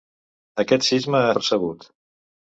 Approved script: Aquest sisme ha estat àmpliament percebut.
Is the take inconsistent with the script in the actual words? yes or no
yes